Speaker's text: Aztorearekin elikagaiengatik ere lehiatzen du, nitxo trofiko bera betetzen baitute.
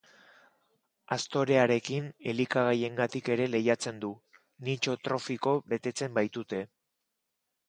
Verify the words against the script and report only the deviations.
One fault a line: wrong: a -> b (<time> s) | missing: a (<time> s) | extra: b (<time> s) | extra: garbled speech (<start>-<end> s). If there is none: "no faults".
missing: bera (5.6 s)